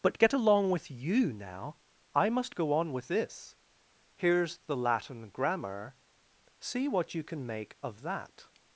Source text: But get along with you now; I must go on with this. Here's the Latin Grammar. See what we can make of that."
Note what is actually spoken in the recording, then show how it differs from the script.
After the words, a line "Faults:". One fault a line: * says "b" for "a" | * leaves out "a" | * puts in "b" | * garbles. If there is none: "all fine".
But get along with you now; I must go on with this. Here's the Latin Grammar. See what you can make of that."
Faults:
* says "you" for "we"